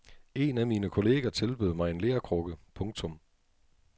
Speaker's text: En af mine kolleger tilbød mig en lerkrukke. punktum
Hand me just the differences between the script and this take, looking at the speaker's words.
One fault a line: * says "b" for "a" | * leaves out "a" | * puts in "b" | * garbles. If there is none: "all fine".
all fine